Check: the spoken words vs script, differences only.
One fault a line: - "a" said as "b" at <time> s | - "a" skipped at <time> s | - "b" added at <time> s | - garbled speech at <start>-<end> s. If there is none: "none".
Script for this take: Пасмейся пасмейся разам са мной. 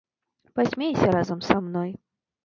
- "пасмейся" skipped at 1.1 s